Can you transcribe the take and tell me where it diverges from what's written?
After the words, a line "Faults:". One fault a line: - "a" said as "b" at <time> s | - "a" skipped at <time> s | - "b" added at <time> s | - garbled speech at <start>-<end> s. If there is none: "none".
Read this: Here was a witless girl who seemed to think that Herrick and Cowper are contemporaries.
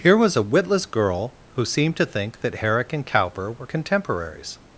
Here was a witless girl who seemed to think that Herrick and Cowper were contemporaries.
Faults:
- "are" said as "were" at 3.5 s